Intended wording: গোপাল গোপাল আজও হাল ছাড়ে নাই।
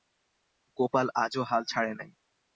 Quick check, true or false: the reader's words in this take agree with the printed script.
false